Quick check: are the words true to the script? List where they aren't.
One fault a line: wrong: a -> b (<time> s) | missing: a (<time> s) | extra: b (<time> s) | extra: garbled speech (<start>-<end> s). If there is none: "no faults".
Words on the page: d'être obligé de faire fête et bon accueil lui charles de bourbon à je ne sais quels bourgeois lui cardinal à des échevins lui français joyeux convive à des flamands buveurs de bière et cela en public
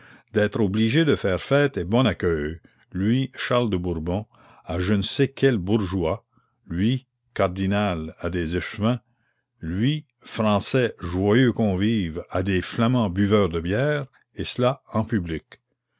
no faults